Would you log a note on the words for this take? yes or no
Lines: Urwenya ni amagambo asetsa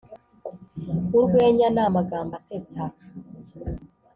no